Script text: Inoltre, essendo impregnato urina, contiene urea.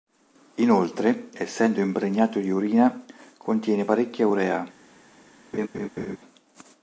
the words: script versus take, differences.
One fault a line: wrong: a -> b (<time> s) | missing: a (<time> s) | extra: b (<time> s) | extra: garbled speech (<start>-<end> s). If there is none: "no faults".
extra: di (2.4 s)
extra: parecchia (3.8 s)